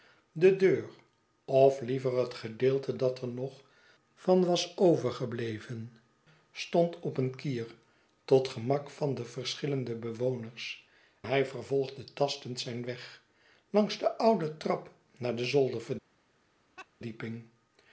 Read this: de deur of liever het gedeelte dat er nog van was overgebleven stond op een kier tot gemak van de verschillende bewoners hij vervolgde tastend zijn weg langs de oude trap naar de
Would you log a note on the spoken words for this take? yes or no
no